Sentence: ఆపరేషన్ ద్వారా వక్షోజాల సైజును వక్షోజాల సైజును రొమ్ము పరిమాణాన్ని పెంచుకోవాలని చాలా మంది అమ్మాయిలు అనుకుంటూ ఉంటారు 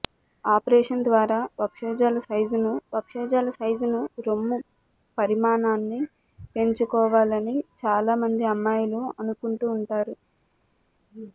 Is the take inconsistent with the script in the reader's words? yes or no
no